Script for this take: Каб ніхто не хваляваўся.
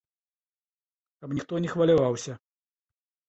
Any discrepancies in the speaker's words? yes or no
no